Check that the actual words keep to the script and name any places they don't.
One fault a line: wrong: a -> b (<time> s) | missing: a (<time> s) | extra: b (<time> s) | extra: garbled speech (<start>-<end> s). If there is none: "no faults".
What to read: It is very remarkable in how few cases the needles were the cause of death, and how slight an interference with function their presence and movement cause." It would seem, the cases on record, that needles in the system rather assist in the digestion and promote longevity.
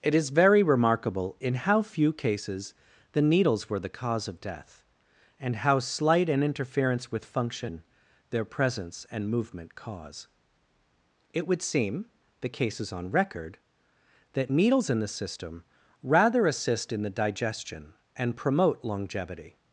no faults